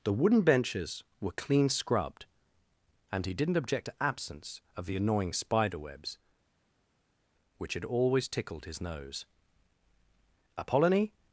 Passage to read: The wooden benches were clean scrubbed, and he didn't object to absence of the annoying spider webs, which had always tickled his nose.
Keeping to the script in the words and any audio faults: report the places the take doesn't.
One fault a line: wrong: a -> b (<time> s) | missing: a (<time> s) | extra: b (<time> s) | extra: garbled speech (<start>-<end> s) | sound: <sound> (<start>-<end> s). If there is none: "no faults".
extra: Apollonie (10.6 s)